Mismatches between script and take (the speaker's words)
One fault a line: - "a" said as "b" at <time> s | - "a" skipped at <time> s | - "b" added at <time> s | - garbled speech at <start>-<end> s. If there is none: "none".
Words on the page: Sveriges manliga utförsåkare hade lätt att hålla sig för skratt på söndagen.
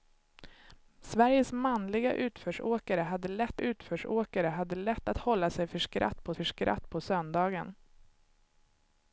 - "utförsåkare hade lätt" added at 3.6 s
- "för skratt på" added at 6.3 s